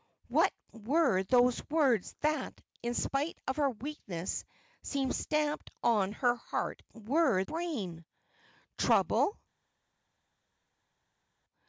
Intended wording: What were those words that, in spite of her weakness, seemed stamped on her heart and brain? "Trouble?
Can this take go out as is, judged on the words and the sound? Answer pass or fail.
fail